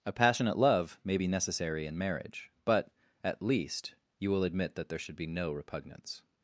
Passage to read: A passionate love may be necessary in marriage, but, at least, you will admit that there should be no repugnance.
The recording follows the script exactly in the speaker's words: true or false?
true